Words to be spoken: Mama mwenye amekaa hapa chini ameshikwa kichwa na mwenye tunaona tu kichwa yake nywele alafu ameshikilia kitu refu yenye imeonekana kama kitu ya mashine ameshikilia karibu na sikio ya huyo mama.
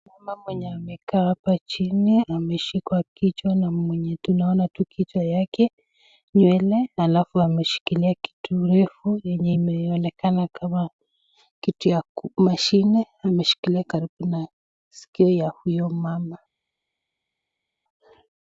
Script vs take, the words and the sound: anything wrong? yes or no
no